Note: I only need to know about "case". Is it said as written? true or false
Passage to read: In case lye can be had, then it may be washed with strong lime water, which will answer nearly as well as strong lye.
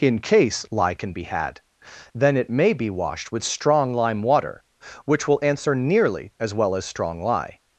true